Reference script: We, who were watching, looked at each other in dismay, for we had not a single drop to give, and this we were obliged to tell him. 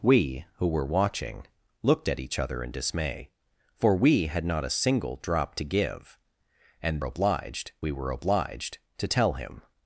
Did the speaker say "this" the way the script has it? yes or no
no